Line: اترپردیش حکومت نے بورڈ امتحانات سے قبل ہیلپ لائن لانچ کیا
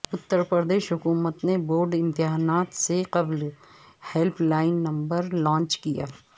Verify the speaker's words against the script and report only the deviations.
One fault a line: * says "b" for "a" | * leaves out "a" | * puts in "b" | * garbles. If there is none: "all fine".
* puts in "نمبر"